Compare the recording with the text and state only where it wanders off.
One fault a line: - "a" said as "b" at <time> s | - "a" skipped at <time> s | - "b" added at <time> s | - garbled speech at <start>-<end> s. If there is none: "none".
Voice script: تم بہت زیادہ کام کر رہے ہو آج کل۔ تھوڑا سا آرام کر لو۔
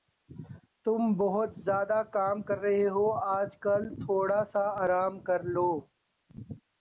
none